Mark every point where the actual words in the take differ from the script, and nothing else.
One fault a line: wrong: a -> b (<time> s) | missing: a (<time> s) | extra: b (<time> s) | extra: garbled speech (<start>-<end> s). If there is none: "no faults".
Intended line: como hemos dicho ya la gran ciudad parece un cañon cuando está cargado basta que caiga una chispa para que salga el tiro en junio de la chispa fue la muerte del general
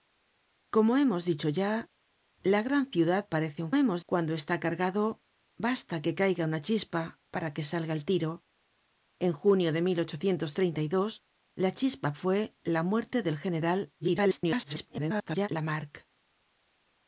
wrong: cañon -> hemos (3.8 s)
extra: garbled speech (14.0-15.5 s)